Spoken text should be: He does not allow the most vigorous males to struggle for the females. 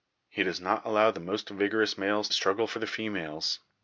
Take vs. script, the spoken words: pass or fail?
fail